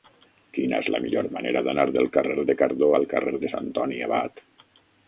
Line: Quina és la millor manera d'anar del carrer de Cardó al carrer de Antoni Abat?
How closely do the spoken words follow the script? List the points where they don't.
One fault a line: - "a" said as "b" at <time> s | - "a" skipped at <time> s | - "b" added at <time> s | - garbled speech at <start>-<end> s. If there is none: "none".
none